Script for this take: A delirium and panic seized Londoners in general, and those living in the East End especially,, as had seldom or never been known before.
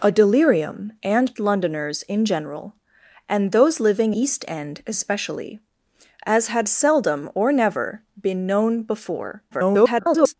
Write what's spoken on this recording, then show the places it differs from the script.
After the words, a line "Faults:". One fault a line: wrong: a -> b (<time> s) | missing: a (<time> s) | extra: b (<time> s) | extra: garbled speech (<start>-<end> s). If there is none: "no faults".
A delirium and Londoners in general, and those living East End especially,, as had seldom or never been known before. [garbled]
Faults:
missing: panic seized (1.4 s)
missing: in the (4.1 s)
extra: garbled speech (9.5-10.3 s)